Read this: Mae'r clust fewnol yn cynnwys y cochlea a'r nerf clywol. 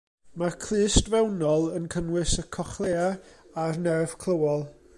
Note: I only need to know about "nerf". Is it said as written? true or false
true